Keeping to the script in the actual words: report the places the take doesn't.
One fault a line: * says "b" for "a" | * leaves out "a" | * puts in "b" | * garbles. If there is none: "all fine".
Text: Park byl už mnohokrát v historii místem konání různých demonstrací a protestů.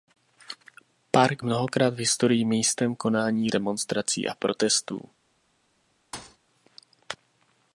* leaves out "byl už"
* leaves out "různých"